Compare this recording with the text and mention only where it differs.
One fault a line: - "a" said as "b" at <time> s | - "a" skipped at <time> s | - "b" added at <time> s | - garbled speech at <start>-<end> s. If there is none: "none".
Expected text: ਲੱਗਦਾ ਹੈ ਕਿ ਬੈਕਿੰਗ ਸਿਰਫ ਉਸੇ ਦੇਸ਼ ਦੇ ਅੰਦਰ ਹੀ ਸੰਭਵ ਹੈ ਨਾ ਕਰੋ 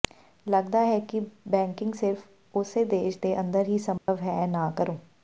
none